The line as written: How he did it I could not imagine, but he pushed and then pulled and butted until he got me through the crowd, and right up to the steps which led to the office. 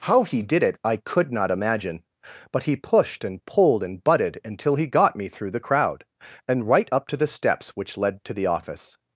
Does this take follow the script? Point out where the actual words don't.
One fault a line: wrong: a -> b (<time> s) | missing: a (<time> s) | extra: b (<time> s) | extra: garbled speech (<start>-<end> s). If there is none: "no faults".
missing: then (3.5 s)